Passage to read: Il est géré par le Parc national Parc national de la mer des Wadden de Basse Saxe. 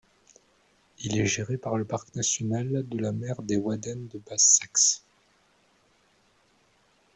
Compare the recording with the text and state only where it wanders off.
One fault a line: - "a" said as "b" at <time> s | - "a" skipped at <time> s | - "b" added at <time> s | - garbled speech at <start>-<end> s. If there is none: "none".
- "Parc national" skipped at 2.7 s